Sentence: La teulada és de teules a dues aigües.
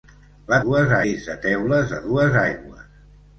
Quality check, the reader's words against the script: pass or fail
fail